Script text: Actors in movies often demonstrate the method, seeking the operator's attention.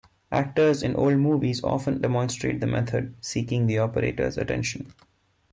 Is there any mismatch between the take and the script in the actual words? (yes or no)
yes